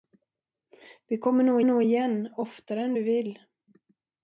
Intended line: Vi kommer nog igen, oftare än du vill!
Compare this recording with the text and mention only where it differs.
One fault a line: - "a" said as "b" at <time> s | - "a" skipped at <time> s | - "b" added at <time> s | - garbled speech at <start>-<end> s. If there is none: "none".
- "nog" added at 1.6 s